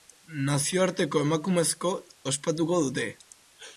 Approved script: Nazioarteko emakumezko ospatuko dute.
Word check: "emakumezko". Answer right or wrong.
right